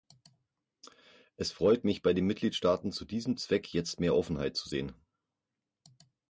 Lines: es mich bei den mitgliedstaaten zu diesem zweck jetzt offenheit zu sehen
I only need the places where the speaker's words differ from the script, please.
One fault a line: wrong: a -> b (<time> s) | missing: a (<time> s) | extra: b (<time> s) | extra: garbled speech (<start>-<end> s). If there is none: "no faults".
extra: freut (1.5 s)
extra: mehr (4.0 s)